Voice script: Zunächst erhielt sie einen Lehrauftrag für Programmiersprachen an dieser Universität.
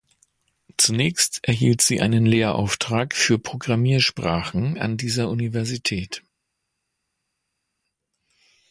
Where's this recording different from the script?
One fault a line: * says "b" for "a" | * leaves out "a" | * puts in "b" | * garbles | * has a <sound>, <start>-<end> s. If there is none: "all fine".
all fine